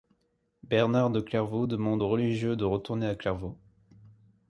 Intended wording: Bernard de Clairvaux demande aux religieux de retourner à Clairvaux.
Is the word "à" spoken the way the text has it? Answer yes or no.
yes